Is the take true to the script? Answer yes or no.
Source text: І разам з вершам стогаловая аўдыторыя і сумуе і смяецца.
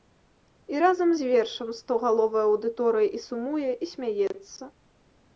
yes